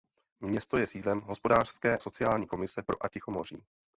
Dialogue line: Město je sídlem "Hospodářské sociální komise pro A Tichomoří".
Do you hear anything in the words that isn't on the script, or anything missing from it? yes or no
no